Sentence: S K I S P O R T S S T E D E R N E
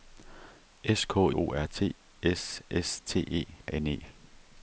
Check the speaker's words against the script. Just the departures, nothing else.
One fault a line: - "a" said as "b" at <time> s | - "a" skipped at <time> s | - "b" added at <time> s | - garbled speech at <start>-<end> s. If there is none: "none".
- "I S P" skipped at 1.3 s
- "D E R" skipped at 3.5 s